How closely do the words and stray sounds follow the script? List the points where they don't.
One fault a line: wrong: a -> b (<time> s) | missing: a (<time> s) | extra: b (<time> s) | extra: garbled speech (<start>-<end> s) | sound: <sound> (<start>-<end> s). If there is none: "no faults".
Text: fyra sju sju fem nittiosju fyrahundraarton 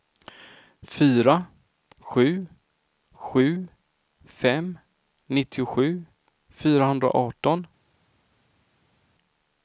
no faults